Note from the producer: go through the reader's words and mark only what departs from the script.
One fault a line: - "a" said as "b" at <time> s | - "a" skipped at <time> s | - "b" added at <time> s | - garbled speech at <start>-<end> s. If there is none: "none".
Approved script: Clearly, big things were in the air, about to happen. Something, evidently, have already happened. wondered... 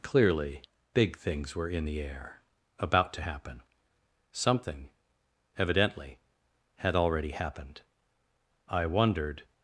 - "have" said as "had" at 6.8 s
- "I" added at 8.7 s